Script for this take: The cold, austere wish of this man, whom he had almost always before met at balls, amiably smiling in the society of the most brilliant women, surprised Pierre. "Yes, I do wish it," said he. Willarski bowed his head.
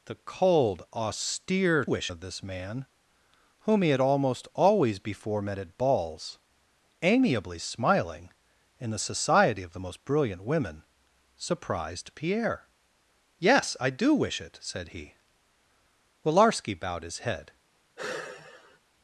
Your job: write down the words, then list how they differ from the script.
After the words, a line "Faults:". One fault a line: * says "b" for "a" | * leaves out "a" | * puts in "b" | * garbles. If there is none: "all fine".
The cold, austere wish of this man, whom he had almost always before met at balls, amiably smiling in the society of the most brilliant women, surprised Pierre. "Yes, I do wish it," said he. Willarski bowed his head.
Faults:
all fine